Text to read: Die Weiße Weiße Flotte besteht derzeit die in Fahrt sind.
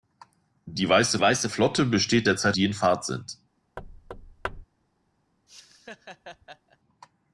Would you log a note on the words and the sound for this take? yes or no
yes